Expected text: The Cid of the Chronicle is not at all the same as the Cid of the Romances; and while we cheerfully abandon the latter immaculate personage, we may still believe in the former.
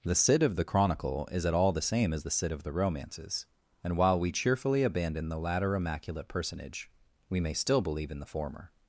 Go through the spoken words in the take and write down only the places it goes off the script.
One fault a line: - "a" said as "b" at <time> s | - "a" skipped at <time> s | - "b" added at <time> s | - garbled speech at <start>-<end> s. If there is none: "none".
- "not" skipped at 1.4 s